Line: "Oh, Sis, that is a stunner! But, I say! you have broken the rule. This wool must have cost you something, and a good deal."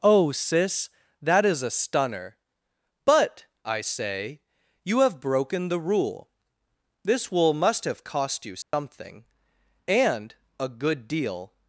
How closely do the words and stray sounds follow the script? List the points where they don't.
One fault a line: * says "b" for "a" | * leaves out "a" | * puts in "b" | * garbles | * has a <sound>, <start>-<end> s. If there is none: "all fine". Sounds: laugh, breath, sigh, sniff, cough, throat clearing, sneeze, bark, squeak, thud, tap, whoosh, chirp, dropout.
* has a dropout, 8.6-8.7 s